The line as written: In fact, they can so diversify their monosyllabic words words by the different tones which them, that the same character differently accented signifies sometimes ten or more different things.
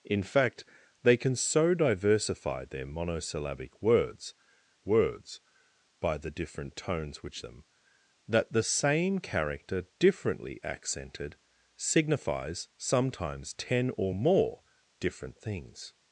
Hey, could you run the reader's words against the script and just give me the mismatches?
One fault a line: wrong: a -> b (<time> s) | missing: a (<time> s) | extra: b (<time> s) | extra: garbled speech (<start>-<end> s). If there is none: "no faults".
no faults